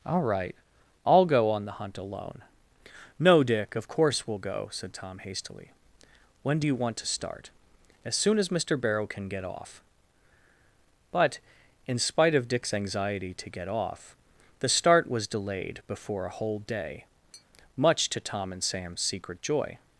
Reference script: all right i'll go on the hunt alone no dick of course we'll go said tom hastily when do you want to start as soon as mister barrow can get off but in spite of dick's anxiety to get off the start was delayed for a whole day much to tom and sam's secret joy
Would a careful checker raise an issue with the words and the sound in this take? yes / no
yes